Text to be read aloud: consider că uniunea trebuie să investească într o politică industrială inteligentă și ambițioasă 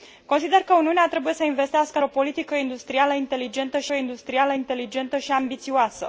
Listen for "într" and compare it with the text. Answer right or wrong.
wrong